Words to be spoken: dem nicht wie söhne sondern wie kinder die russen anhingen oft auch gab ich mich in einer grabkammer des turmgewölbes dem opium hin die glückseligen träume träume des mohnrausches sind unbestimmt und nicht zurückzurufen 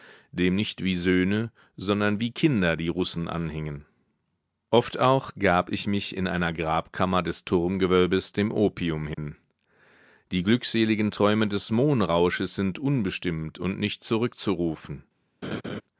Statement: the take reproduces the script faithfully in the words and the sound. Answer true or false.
false